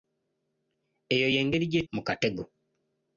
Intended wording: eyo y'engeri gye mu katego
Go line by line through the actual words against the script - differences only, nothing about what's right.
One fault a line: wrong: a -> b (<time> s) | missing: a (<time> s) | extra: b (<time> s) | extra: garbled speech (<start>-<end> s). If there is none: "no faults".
no faults